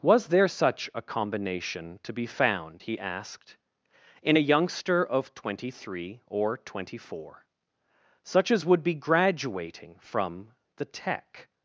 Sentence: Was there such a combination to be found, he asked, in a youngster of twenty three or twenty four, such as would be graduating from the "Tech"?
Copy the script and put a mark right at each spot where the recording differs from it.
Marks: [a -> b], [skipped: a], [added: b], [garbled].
Was there such a combination to be found, he asked, in a youngster of twenty three or twenty four, such as would be graduating from the "Tech"?